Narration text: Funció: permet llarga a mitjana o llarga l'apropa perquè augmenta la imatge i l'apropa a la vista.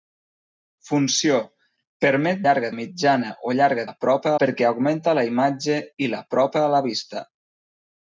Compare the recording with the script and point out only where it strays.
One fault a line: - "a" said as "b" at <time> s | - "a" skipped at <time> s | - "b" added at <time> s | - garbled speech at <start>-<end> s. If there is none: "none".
none